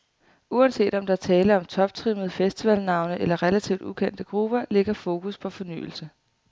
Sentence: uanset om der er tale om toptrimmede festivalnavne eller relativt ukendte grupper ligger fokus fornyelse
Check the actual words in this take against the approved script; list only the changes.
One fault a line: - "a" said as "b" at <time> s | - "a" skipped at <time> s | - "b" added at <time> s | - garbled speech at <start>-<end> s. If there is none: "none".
- "på" added at 5.4 s